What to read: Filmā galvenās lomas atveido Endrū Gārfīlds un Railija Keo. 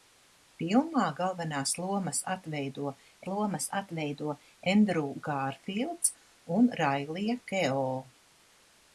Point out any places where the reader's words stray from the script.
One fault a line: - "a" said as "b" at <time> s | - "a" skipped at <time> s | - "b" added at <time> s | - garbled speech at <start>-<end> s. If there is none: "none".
- "lomas atveido" added at 3.3 s